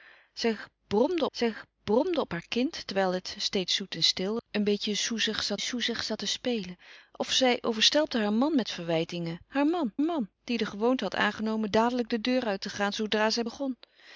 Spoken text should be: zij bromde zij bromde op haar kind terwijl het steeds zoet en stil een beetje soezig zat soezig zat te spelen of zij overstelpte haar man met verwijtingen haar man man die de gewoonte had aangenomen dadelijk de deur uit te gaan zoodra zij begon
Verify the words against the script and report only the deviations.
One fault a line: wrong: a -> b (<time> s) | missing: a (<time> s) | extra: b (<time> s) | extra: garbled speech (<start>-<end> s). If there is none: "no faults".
no faults